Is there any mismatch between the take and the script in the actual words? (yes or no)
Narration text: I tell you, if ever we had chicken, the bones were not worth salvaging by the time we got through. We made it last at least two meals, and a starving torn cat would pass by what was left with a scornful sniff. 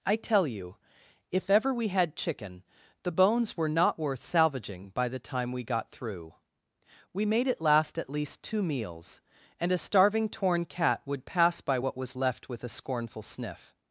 no